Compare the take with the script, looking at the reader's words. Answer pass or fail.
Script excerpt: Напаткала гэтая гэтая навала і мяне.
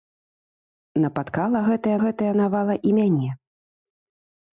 pass